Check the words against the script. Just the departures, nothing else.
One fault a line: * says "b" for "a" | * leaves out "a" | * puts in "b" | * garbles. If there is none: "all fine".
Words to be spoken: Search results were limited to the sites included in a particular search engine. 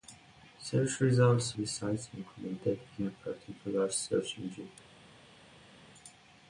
* leaves out "were limited to"